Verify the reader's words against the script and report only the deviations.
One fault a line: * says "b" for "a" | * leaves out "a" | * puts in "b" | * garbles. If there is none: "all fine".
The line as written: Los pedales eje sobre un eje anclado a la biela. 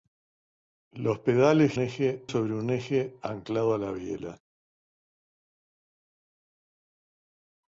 all fine